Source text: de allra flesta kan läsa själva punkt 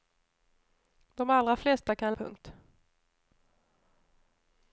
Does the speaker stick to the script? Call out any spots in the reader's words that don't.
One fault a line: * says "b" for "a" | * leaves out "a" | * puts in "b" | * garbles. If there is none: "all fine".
* leaves out "läsa själva"